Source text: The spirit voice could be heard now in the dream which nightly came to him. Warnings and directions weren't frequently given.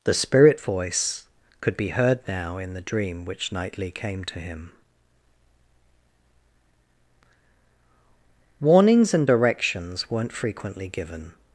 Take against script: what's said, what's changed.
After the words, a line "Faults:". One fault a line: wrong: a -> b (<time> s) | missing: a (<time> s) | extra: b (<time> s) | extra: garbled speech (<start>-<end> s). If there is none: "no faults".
The spirit voice could be heard now in the dream which nightly came to him. Warnings and directions weren't frequently given.
Faults:
no faults